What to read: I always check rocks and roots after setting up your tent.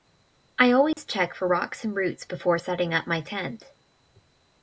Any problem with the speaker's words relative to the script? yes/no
yes